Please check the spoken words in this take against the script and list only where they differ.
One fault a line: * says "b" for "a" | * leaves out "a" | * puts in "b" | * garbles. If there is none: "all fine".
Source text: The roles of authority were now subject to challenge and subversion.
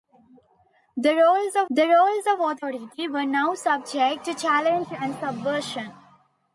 * puts in "the roles of"